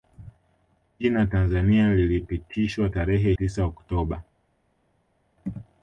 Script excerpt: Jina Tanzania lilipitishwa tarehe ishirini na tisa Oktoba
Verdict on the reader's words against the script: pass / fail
fail